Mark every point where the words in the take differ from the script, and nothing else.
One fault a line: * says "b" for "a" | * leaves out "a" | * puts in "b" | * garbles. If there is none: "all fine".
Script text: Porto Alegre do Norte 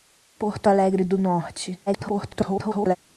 * garbles